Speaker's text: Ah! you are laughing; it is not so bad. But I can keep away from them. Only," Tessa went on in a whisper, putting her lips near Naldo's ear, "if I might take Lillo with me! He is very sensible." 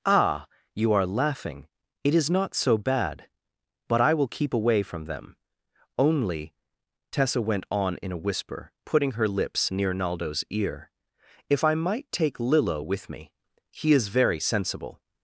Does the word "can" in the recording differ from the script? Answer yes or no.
yes